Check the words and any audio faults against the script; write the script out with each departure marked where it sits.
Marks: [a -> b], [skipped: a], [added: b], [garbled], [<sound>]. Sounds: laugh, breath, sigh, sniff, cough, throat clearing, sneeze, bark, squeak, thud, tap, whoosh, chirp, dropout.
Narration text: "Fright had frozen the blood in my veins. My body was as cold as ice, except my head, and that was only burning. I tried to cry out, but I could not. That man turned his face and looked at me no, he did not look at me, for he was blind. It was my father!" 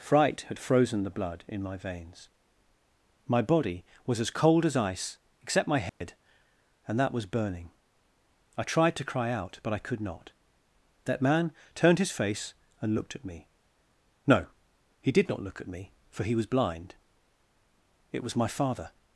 "Fright had frozen the blood in my veins. My body was as cold as ice, except my head, [dropout] and that was [skipped: only] burning. I tried to cry out, but I could not. That man turned his face and looked at me no, he did not look at me, for he was blind. It was my father!"